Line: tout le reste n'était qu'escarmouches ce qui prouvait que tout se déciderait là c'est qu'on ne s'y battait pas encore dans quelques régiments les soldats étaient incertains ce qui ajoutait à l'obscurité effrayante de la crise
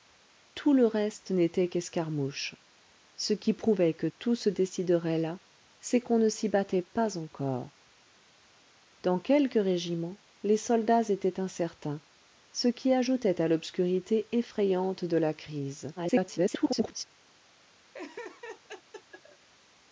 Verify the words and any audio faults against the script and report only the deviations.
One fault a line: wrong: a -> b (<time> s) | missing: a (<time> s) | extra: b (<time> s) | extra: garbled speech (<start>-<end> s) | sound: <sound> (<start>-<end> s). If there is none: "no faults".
extra: garbled speech (16.0-17.0 s)
sound: laugh (17.9-19.5 s)